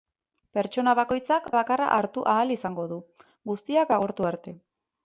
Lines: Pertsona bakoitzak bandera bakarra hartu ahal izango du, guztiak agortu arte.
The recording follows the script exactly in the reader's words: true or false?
false